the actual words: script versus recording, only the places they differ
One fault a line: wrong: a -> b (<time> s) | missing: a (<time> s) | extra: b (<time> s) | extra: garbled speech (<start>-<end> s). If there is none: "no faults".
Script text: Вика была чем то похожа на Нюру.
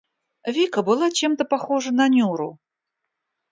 no faults